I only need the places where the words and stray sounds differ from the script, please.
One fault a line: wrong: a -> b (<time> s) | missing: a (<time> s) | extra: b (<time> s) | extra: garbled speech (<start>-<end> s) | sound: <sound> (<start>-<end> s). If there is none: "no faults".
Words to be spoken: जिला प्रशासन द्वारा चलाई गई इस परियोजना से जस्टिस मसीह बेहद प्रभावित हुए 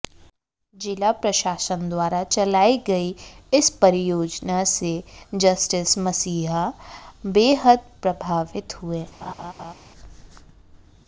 sound: laugh (9.2-9.7 s)